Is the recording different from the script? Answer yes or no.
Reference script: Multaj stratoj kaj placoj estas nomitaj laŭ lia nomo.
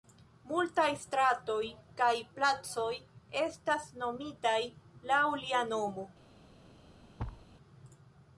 no